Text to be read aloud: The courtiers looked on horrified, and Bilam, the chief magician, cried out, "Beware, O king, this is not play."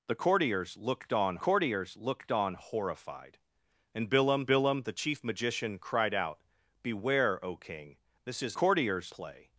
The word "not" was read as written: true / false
false